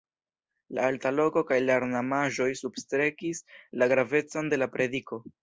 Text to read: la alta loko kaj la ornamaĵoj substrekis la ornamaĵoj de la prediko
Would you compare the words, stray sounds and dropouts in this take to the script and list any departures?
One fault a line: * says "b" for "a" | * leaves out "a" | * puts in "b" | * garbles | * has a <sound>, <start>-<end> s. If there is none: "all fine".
* says "gravecon" for "ornamaĵoj"